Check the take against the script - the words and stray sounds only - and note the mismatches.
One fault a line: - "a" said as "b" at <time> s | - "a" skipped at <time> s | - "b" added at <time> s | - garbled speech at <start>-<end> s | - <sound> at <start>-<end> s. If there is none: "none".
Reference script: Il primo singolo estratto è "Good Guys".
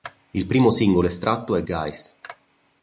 - "Good" skipped at 1.6 s